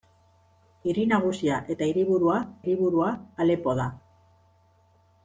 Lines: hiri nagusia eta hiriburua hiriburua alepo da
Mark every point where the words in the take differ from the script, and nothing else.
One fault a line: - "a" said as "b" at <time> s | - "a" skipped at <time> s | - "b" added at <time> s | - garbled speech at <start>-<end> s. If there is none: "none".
none